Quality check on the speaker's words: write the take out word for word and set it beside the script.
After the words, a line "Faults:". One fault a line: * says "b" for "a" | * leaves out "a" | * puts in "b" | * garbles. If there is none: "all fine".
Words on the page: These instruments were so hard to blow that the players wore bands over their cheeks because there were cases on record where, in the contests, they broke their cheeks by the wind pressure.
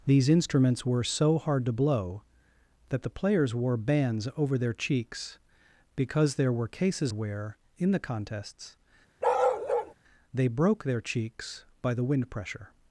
These instruments were so hard to blow that the players wore bands over their cheeks because there were cases where, in the contests, they broke their cheeks by the wind pressure.
Faults:
* leaves out "on record"